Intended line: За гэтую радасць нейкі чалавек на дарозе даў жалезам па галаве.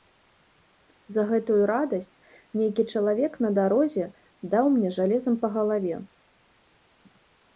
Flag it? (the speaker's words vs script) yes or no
yes